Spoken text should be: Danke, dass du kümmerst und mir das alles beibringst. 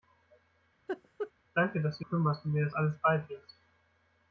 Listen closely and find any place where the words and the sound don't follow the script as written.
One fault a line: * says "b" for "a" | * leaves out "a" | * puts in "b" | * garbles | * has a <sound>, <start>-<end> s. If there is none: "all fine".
* has a laugh, 0.9-1.3 s